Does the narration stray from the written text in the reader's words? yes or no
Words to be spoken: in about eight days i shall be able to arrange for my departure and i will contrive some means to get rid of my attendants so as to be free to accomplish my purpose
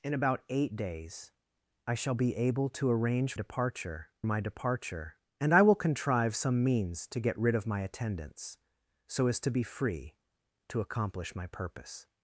yes